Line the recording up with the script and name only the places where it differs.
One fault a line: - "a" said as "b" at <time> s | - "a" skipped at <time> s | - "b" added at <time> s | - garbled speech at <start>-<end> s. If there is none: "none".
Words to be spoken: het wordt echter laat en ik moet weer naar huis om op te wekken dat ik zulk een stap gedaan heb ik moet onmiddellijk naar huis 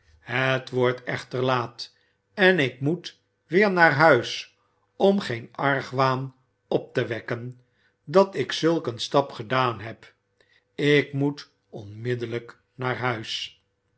- "geen argwaan" added at 5.2 s